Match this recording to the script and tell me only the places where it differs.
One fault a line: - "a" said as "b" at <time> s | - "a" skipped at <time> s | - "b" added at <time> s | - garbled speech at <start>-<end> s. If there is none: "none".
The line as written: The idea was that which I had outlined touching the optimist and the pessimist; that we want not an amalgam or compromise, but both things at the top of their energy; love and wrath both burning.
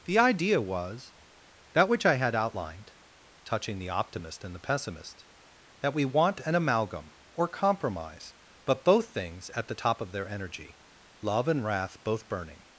- "not" skipped at 6.4 s